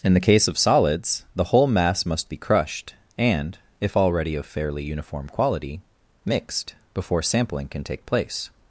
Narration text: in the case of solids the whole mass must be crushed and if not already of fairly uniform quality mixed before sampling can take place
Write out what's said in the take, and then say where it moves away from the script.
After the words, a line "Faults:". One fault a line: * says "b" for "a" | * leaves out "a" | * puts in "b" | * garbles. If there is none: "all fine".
in the case of solids the whole mass must be crushed and if already of fairly uniform quality mixed before sampling can take place
Faults:
* leaves out "not"